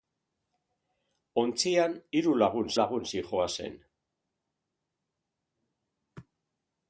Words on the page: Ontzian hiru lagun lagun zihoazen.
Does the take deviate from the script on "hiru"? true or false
false